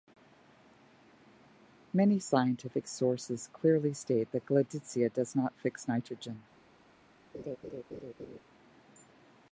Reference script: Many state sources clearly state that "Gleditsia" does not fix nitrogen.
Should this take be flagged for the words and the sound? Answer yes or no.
yes